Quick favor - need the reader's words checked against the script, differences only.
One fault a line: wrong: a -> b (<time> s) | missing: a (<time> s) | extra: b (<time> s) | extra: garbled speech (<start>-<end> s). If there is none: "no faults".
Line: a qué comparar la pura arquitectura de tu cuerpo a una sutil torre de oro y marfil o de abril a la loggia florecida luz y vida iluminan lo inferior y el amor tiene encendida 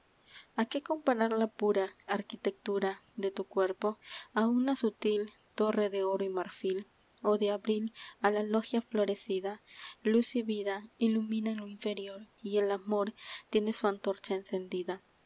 extra: su antorcha (13.7 s)